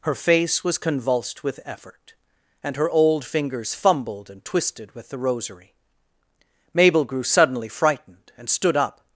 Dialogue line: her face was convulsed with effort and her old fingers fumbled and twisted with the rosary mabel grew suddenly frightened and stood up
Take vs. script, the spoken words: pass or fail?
pass